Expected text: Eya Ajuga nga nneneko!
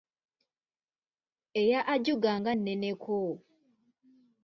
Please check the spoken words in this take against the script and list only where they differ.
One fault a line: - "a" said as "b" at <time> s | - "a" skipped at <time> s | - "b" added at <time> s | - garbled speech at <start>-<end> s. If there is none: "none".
none